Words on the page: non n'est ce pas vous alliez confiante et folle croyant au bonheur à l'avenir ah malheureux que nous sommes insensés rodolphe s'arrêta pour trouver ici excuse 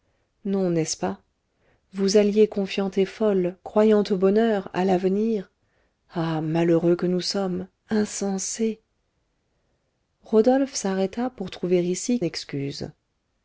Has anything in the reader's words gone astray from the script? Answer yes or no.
no